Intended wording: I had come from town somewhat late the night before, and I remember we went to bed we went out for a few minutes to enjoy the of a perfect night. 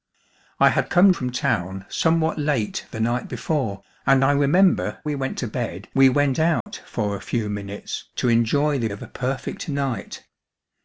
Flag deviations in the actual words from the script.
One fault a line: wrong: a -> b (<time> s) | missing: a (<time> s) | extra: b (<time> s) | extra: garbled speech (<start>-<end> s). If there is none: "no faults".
no faults